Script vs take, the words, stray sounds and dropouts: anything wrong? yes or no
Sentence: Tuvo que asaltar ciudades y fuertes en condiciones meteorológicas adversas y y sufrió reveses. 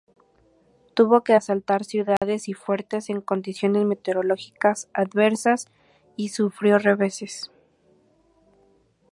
yes